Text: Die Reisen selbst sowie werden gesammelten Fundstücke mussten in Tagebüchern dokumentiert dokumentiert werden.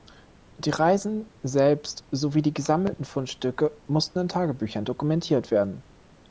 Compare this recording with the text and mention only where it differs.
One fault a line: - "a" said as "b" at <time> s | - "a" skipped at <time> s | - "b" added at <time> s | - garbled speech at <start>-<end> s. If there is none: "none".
- "werden" said as "die" at 2.4 s
- "dokumentiert" skipped at 5.5 s